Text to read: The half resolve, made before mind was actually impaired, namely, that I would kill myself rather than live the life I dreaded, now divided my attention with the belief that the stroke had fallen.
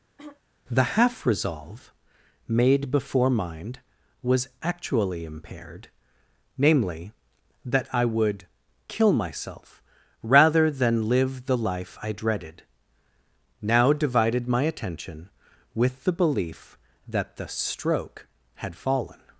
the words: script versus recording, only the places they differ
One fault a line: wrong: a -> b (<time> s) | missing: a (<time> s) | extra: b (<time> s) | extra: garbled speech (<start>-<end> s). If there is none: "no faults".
no faults